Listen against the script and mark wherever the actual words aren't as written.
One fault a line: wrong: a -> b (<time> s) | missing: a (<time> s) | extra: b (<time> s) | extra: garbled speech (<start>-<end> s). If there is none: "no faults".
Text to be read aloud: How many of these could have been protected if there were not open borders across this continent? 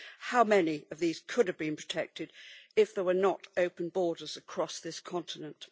no faults